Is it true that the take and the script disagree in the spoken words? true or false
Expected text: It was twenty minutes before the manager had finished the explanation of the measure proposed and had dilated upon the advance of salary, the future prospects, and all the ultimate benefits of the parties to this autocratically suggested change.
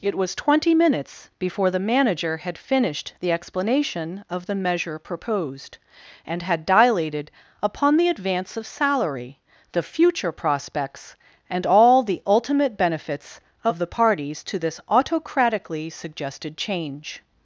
false